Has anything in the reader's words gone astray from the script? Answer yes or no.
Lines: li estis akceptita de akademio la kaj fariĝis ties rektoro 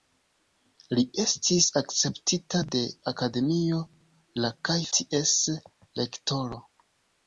yes